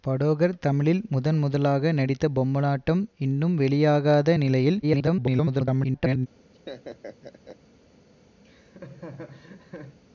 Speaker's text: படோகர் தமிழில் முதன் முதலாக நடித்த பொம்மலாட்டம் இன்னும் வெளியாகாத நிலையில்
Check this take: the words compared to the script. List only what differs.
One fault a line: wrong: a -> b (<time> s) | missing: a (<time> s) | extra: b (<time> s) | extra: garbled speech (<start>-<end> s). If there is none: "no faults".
extra: garbled speech (4.8-6.3 s)